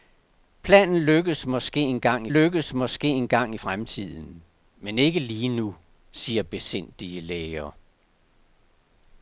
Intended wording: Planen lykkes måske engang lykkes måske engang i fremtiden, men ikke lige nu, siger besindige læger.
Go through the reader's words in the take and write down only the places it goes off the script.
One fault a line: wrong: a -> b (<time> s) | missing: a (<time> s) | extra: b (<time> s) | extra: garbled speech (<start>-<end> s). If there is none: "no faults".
no faults